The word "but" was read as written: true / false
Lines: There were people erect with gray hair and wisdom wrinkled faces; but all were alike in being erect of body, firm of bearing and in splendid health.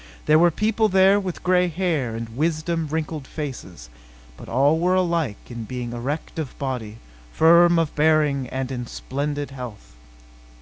true